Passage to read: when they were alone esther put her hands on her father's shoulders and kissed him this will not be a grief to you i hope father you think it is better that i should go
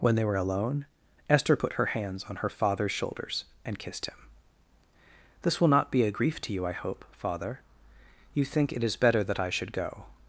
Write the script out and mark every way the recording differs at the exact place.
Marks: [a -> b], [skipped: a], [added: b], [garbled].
when they were alone esther put her hands on her father's shoulders and kissed him this will not be a grief to you i hope father you think it is better that i should go